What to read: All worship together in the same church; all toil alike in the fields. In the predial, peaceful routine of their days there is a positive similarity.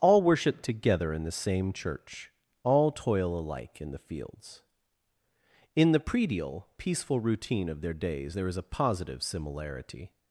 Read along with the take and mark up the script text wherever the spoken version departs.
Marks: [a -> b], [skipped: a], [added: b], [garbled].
All worship together in the same church; all toil alike in the fields. In the predial, peaceful routine of their days there is a positive similarity.